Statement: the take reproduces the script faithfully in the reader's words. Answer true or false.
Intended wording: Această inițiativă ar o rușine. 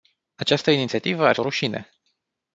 true